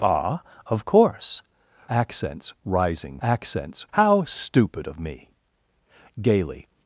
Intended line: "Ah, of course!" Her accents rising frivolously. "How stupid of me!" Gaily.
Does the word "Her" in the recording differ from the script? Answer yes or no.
yes